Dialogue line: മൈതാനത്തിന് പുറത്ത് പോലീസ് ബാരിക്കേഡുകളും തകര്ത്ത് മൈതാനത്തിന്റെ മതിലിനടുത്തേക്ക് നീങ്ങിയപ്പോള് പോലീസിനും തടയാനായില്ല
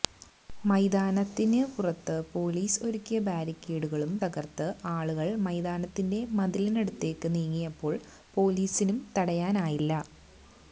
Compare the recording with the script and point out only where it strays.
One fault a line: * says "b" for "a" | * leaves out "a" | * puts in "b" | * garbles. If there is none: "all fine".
* puts in "ഒരുക്കിയ"
* puts in "ആളുകള്"